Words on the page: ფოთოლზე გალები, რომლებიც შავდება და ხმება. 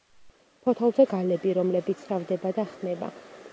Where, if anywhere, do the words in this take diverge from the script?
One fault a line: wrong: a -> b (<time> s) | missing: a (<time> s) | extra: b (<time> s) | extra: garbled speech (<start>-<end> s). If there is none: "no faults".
no faults